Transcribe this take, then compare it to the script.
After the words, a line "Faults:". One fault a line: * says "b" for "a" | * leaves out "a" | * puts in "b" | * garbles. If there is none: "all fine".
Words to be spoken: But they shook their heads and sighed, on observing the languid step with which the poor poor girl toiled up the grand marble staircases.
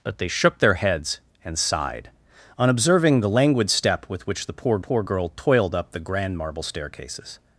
But they shook their heads and sighed, on observing the languid step with which the poor poor girl toiled up the grand marble staircases.
Faults:
all fine